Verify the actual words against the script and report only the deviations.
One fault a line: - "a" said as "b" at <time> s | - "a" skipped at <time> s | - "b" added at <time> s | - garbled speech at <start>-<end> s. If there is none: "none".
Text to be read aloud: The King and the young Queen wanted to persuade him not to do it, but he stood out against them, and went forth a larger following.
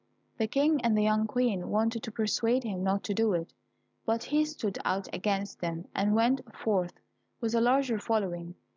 - "with" added at 7.4 s